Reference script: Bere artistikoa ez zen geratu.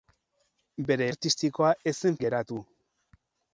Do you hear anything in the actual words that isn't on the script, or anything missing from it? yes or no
no